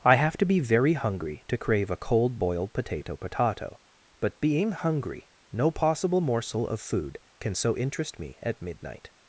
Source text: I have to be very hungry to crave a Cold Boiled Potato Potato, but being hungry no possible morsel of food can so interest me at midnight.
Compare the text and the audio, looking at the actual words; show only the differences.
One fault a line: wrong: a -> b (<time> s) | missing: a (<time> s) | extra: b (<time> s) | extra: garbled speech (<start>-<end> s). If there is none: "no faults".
no faults